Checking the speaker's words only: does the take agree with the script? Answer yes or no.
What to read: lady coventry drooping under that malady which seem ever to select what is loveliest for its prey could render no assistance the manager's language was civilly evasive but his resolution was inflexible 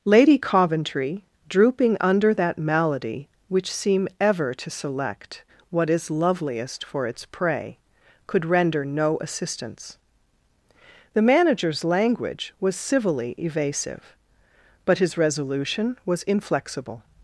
yes